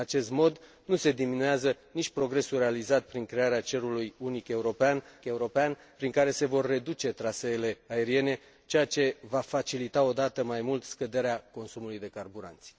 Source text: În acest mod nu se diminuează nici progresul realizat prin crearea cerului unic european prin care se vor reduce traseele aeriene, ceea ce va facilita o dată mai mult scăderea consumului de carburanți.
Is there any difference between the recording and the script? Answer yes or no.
yes